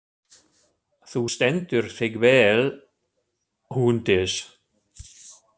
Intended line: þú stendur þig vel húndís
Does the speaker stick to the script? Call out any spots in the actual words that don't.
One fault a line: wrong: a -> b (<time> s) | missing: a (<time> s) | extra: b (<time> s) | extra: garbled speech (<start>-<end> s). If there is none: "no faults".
no faults